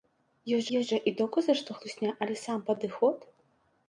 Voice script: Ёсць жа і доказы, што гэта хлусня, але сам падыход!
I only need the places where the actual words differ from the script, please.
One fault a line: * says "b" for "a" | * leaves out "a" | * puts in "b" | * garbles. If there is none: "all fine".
* puts in "ёсць"
* leaves out "гэта"